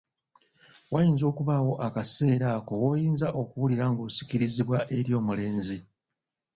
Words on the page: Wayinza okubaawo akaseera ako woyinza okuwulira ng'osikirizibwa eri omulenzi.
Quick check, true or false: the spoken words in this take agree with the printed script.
true